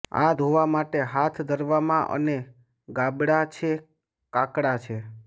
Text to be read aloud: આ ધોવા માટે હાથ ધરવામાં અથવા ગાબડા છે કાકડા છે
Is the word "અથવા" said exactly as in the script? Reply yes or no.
no